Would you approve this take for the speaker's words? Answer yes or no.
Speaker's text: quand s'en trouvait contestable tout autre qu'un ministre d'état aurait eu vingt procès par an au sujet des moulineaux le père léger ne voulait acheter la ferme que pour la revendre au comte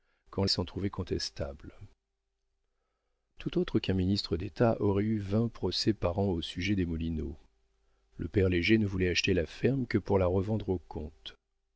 yes